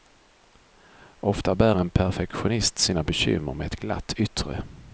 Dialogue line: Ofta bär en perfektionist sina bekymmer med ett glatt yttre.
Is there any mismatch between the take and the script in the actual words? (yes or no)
no